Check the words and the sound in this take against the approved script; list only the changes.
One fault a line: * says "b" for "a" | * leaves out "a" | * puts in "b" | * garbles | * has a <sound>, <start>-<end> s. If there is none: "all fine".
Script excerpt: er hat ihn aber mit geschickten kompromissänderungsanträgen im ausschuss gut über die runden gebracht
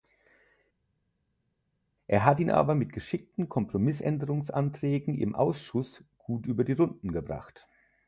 all fine